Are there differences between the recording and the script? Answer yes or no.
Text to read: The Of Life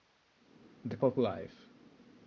no